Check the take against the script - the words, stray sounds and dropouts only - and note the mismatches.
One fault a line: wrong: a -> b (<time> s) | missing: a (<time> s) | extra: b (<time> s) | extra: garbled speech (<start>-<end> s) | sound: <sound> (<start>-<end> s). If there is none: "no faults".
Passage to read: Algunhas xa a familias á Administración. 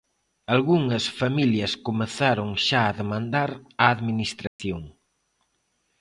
extra: familias comezaron (1.2 s)
wrong: familias -> demandar (3.0 s)
sound: dropout (4.5-4.6 s)